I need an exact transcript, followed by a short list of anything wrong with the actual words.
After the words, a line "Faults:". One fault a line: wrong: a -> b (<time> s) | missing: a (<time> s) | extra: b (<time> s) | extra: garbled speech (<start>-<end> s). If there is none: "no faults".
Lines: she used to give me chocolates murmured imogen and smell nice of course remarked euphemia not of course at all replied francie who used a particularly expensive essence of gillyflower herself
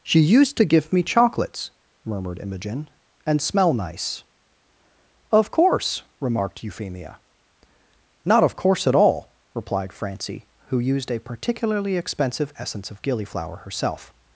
she used to give me chocolates murmured imogen and smell nice of course remarked euphemia not of course at all replied francie who used a particularly expensive essence of gillyflower herself
Faults:
no faults